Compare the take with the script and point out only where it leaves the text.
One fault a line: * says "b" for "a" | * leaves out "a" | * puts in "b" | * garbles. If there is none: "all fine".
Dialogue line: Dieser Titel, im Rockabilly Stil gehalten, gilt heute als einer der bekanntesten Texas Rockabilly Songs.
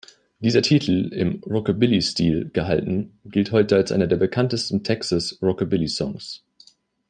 all fine